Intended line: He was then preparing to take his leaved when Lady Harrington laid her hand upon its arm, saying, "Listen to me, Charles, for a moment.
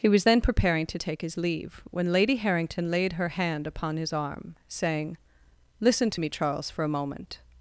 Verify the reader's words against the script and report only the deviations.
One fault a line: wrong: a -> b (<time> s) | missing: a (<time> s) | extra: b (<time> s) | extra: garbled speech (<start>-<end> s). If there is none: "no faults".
wrong: leaved -> leave (1.4 s)
wrong: its -> his (4.0 s)